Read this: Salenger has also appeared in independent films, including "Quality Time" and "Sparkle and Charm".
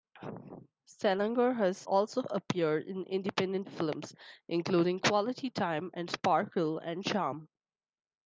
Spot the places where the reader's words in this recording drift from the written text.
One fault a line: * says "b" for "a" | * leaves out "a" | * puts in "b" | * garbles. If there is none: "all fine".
all fine